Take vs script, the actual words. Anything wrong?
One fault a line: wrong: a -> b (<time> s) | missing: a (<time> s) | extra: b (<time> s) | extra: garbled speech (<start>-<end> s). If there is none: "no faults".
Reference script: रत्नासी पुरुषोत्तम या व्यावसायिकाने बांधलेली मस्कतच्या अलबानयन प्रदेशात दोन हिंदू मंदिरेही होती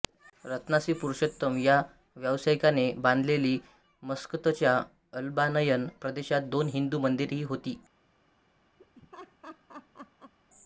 no faults